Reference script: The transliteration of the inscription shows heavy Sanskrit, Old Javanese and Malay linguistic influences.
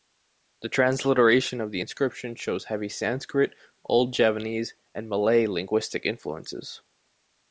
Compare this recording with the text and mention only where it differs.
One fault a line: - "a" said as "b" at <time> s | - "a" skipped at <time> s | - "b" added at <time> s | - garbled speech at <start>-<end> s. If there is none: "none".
none